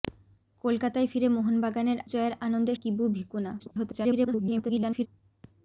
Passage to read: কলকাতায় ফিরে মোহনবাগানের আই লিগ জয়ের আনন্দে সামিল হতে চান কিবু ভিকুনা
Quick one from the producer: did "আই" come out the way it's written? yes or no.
no